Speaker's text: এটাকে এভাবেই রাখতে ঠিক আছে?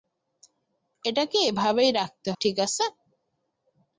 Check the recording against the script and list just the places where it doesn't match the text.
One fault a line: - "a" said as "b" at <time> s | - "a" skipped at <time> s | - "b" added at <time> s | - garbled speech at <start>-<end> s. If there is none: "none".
none